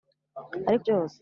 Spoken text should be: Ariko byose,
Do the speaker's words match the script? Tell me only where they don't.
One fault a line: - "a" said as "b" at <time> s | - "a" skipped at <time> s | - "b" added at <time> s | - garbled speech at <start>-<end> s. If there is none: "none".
none